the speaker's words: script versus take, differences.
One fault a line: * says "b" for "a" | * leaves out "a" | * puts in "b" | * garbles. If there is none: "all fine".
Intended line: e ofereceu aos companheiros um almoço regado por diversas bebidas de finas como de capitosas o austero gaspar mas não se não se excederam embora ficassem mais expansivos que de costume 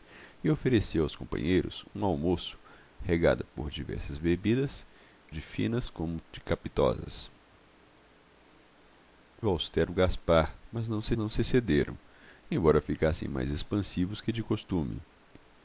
all fine